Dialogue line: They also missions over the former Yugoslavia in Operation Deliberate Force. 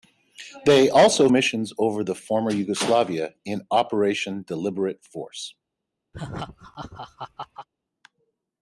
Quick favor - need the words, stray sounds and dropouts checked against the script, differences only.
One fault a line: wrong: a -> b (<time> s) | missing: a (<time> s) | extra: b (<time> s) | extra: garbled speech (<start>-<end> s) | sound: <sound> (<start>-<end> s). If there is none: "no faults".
sound: laugh (6.1-7.7 s)